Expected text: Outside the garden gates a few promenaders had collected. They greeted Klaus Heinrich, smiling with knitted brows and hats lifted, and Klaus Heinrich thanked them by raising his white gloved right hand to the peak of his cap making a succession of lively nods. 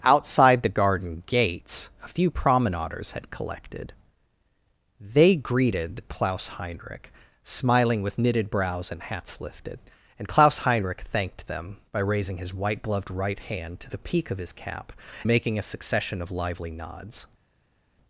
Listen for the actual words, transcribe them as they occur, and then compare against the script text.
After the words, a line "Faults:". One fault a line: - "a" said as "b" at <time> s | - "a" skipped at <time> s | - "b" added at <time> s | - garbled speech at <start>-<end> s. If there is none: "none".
Outside the garden gates a few promenaders had collected. They greeted Klaus Heinrich, smiling with knitted brows and hats lifted, and Klaus Heinrich thanked them by raising his white gloved right hand to the peak of his cap making a succession of lively nods.
Faults:
none